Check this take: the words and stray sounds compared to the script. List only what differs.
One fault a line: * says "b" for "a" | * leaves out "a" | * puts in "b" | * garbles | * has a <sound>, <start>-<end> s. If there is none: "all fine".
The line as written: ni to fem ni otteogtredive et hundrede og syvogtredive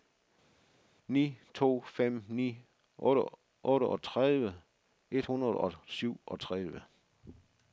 all fine